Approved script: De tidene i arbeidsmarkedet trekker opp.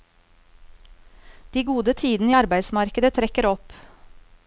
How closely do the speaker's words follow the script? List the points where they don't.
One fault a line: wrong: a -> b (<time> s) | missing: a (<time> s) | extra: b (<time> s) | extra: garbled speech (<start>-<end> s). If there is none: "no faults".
extra: gode (1.7 s)